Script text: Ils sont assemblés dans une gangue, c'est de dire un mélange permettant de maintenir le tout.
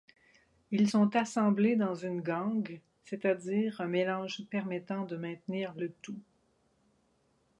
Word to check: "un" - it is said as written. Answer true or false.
true